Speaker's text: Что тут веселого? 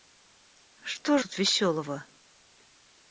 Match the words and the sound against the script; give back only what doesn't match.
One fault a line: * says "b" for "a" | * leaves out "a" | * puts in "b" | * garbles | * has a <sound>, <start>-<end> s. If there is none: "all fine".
all fine